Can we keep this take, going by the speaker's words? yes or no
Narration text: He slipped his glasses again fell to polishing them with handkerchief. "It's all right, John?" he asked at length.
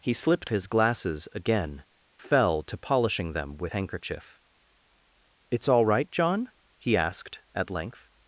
yes